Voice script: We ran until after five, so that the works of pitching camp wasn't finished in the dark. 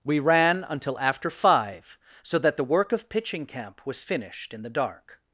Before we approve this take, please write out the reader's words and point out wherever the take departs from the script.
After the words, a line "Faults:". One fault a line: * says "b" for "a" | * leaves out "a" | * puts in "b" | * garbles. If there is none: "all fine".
We ran until after five, so that the work of pitching camp was finished in the dark.
Faults:
* says "work" for "works"
* says "was" for "wasn't"